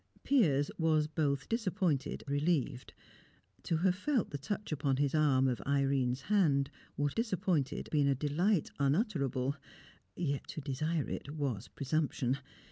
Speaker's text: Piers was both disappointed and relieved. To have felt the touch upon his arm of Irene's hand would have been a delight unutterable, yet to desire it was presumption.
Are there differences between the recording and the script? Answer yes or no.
yes